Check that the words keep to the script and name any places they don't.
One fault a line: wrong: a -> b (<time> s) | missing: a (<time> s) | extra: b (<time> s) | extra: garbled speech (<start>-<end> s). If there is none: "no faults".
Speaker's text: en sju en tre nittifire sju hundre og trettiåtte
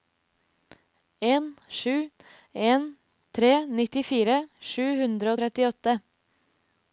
no faults